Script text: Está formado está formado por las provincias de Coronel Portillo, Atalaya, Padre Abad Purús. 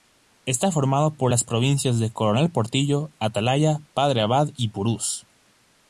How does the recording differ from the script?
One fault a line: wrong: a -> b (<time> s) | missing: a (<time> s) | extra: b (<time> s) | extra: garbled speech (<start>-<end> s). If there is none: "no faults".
missing: está formado (1.1 s)
extra: y (4.5 s)